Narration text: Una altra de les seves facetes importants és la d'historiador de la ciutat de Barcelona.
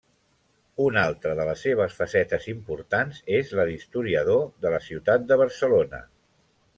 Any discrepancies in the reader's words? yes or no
no